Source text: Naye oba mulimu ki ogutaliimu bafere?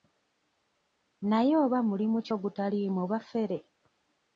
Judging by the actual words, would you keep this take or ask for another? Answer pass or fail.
pass